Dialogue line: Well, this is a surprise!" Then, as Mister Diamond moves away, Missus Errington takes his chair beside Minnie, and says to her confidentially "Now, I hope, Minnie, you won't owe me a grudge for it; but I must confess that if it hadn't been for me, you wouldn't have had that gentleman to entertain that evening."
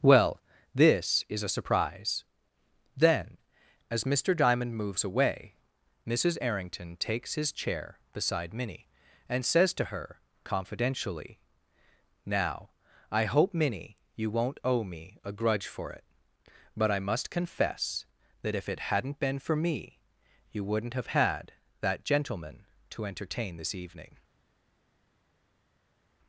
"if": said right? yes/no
yes